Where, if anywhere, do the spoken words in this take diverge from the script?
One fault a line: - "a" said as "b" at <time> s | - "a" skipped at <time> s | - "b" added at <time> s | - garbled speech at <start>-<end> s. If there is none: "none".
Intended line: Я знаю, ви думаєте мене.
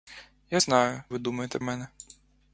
none